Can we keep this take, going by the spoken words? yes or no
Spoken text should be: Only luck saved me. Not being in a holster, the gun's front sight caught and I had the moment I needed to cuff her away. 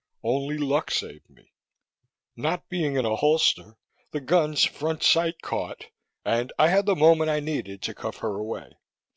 yes